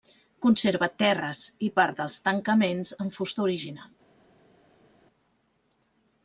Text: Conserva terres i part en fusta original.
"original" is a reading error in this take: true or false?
false